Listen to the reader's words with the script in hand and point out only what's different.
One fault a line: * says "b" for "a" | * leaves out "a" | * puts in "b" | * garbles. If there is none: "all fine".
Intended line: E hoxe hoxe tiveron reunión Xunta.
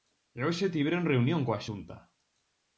* leaves out "hoxe"
* puts in "coa"